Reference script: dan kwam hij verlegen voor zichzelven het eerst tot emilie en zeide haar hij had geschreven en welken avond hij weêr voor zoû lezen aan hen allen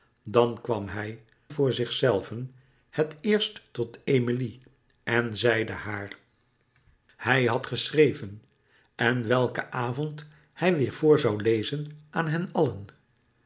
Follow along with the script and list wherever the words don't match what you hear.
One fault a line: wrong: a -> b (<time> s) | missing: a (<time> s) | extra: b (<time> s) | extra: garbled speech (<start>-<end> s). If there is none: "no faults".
missing: verlegen (1.2 s)